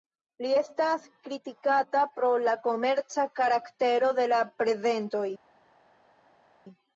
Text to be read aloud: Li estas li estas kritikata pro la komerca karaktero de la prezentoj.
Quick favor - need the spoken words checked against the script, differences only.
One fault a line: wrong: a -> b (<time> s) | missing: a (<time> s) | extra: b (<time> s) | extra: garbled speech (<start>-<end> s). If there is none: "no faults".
missing: li estas (1.1 s)